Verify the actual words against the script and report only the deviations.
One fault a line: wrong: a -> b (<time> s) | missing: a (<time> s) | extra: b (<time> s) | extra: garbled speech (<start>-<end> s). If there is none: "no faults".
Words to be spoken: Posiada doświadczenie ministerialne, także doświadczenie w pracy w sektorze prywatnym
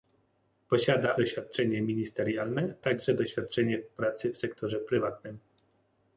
no faults